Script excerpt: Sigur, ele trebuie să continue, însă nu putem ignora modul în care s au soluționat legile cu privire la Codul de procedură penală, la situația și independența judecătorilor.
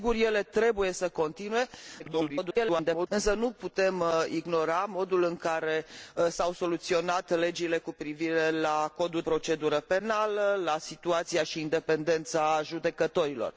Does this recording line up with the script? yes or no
no